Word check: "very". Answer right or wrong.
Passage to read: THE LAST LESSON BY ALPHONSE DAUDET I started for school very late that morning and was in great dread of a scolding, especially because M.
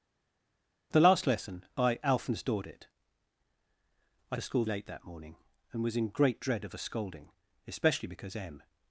wrong